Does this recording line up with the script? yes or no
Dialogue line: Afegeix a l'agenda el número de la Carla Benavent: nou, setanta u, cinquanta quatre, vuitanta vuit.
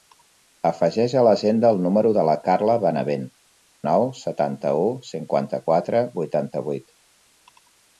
yes